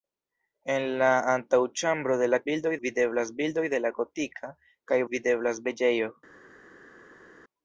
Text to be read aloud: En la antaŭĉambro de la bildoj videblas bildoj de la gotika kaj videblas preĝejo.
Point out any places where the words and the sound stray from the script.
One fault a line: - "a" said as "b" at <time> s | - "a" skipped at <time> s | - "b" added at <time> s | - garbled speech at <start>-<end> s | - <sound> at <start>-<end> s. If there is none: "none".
none